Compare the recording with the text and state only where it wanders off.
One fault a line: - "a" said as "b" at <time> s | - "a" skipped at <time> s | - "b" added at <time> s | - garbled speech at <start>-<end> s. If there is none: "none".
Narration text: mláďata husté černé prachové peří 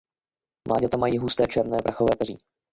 - "mají" added at 1.0 s